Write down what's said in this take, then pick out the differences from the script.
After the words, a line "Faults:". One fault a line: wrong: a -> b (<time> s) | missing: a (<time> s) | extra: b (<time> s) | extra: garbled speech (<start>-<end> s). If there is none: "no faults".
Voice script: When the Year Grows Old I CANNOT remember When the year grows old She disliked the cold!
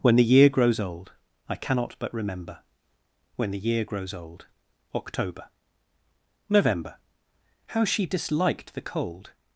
When the Year Grows Old I CANNOT but remember When the year grows old October November How she disliked the cold!
Faults:
extra: but (2.0 s)
extra: October November How (4.9 s)